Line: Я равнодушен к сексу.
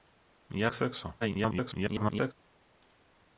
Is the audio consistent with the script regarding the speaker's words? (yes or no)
no